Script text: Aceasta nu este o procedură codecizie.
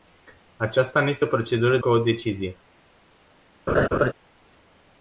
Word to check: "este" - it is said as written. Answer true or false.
true